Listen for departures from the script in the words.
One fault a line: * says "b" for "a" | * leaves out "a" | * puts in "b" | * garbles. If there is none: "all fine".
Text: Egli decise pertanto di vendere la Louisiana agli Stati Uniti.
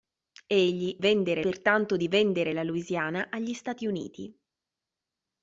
* says "vendere" for "decise"